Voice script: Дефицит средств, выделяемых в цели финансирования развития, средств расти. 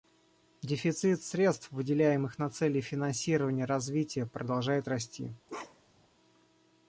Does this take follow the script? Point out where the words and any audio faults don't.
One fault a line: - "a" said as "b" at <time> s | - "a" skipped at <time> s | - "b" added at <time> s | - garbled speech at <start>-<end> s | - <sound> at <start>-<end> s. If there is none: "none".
- "в" said as "на" at 2.4 s
- "средств" said as "продолжает" at 4.2 s
- bark at 5.5-6.1 s